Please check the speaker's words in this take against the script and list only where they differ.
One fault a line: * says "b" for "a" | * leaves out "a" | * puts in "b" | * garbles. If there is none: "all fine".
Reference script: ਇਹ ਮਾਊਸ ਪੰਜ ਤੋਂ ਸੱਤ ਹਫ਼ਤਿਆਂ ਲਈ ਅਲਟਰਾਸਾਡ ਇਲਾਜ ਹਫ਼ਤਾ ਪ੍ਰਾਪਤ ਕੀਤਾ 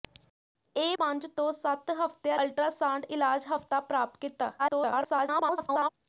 * leaves out "ਮਾਊਸ"
* leaves out "ਲਈ"
* garbles